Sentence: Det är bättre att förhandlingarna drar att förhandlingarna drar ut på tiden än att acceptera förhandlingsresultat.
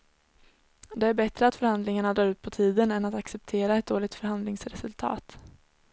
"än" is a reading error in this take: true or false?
false